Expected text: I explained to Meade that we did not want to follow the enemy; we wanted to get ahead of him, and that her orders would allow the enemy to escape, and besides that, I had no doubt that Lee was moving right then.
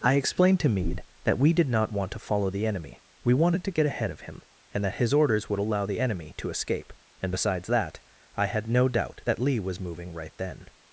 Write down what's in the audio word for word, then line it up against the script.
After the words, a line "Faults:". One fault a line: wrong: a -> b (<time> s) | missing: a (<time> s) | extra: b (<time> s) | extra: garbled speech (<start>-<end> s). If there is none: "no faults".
I explained to Meade that we did not want to follow the enemy; we wanted to get ahead of him, and that his orders would allow the enemy to escape, and besides that, I had no doubt that Lee was moving right then.
Faults:
wrong: her -> his (5.0 s)